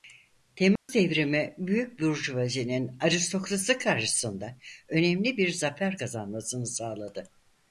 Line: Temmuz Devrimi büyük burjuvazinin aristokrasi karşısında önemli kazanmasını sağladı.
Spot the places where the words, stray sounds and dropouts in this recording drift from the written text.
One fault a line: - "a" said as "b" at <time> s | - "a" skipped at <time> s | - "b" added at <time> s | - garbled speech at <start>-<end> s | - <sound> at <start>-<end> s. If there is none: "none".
- dropout at 0.8-0.9 s
- "bir zafer" added at 5.4 s